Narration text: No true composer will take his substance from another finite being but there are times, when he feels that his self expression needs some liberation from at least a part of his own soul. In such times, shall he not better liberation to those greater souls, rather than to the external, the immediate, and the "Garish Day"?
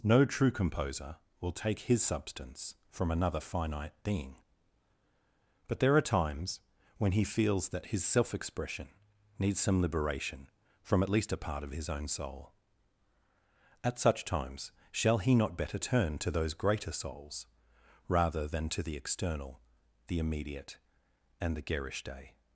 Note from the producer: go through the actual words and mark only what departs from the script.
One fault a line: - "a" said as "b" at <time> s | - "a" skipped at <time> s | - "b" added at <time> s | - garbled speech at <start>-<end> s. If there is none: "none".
- "In" said as "At" at 13.8 s
- "liberation" said as "turn" at 15.8 s